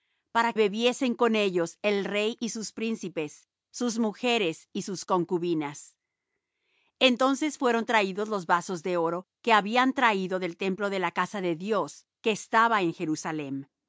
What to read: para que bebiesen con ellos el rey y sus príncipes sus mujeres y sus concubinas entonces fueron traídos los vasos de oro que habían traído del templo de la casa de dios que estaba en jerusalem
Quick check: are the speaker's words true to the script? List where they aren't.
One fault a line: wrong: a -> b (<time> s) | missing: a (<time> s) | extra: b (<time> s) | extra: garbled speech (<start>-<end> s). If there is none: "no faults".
missing: que (0.5 s)